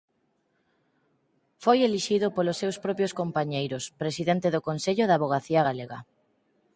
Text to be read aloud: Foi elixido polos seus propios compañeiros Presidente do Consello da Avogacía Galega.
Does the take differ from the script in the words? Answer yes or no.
no